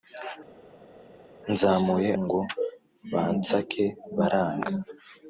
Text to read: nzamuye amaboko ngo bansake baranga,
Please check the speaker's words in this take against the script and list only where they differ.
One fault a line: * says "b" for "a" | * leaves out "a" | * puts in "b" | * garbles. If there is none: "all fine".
* leaves out "amaboko"